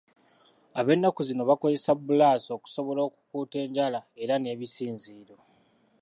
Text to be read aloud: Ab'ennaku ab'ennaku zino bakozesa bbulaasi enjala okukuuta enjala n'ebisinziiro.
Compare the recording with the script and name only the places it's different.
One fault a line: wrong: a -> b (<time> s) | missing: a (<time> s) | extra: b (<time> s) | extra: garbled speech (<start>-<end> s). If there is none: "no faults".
missing: ab'ennaku (1.2 s)
wrong: enjala -> okusobola (2.6 s)
extra: era (4.2 s)